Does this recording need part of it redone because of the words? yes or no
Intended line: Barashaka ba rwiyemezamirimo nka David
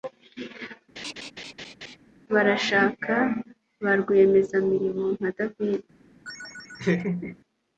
no